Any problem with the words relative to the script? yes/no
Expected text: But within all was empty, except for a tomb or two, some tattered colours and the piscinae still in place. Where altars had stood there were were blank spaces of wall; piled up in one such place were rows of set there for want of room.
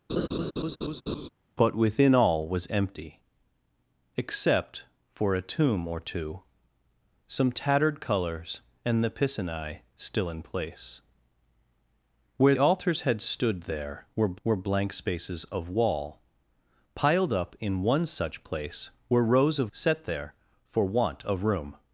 no